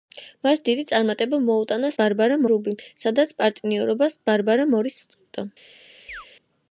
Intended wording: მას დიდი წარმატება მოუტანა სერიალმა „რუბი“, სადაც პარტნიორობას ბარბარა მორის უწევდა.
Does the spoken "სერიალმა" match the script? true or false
false